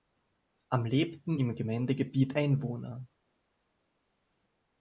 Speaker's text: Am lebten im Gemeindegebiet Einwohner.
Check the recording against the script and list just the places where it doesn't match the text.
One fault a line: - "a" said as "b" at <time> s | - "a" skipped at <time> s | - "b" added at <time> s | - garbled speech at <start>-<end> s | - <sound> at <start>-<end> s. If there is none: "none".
none